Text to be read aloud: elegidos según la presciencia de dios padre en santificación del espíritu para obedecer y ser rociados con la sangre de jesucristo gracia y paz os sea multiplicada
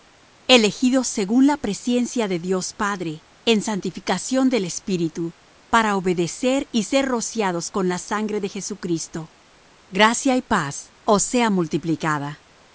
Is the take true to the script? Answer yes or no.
yes